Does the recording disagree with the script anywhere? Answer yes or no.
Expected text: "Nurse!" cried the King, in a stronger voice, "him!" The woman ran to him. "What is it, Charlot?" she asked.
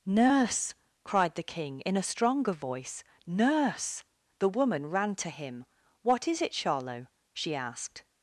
yes